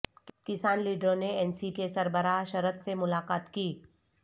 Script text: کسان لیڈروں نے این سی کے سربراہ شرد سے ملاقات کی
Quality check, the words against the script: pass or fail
pass